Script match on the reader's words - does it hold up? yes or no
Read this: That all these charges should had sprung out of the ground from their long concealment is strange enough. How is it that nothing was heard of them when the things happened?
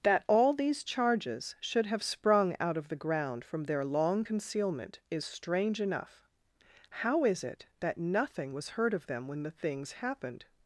no